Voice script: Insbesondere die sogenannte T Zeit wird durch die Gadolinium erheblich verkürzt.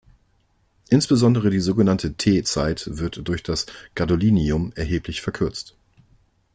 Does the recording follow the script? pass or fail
fail